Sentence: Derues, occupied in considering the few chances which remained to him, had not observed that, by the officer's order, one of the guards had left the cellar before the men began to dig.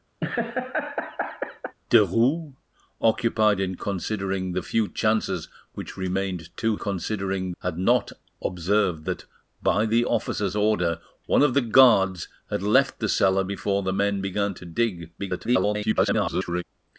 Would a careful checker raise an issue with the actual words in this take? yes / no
yes